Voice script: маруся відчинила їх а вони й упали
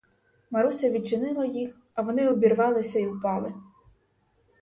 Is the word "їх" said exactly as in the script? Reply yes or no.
yes